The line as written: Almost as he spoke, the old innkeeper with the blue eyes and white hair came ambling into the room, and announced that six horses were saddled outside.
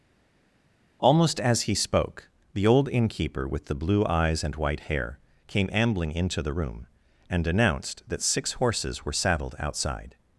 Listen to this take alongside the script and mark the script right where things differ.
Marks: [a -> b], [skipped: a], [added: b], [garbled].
Almost as he spoke, the old innkeeper with the blue eyes and white hair came ambling into the room, and announced that six horses were saddled outside.